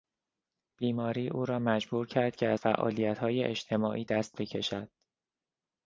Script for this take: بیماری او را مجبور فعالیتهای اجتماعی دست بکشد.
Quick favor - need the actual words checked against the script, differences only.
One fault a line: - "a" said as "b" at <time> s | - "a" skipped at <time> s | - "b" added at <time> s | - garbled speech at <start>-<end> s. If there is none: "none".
- "کرد که از" added at 2.1 s